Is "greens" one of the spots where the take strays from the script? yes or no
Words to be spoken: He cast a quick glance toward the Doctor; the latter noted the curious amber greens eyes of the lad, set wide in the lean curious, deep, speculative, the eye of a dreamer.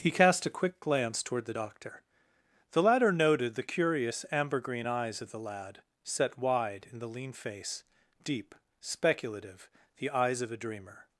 yes